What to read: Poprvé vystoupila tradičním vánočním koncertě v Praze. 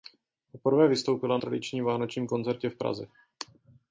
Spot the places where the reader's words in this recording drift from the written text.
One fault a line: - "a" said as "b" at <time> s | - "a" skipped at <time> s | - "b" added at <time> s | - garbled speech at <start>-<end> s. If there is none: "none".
none